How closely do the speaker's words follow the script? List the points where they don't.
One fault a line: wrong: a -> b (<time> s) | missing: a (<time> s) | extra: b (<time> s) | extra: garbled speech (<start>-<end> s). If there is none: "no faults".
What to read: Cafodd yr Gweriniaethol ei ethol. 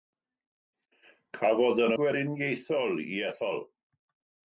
no faults